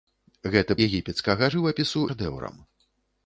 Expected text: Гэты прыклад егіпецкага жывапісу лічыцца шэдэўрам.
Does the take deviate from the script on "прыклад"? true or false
true